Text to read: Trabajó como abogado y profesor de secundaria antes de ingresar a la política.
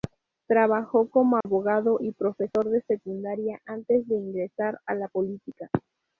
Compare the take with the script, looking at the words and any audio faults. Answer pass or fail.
fail